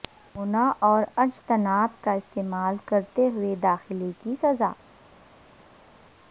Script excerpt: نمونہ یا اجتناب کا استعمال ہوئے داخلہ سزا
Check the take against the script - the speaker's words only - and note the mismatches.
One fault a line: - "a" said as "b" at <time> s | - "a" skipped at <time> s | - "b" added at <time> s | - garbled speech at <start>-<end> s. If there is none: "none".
- "یا" said as "اور" at 0.8 s
- "کرتے" added at 2.9 s
- "کی" added at 4.2 s